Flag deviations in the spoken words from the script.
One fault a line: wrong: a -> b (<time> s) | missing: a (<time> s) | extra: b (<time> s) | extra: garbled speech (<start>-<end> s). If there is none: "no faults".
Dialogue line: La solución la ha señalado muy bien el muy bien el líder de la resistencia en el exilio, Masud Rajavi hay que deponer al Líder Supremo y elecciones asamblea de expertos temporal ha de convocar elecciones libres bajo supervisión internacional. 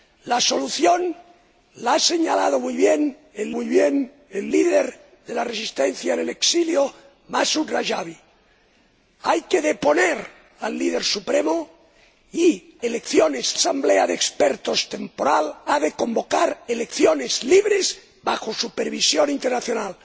no faults